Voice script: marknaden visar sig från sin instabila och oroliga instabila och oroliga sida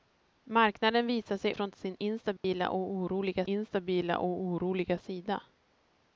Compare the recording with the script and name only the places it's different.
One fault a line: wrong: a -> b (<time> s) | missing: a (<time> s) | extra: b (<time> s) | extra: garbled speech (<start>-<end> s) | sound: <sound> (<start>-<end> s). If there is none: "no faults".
sound: dropout (2.4-2.4 s)